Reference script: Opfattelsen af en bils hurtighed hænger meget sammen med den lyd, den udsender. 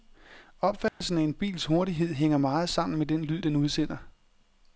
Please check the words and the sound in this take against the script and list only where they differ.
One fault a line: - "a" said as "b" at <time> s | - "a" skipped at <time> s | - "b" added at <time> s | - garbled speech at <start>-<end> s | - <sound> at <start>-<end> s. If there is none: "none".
- dropout at 0.9-1.0 s